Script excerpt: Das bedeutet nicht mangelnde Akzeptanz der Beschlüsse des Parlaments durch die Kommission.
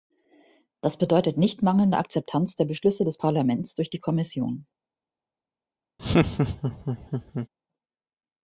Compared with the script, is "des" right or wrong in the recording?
right